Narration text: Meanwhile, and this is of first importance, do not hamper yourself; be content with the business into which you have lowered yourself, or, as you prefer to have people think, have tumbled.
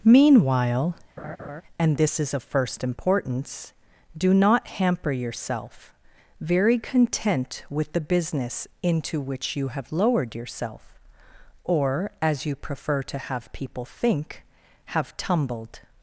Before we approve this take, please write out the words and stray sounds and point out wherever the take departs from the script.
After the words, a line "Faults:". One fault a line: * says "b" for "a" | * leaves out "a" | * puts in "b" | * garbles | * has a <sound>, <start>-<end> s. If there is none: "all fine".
Meanwhile, and this is of first importance, do not hamper yourself; very content with the business into which you have lowered yourself, or, as you prefer to have people think, have tumbled.
Faults:
* has a laugh, 1.2-1.6 s
* says "very" for "be"